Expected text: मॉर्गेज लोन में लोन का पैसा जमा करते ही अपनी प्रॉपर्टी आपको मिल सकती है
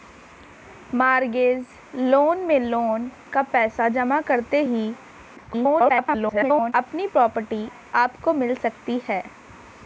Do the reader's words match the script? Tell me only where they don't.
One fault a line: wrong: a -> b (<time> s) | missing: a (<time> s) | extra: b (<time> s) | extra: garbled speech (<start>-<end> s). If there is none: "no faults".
extra: garbled speech (5.4-6.7 s)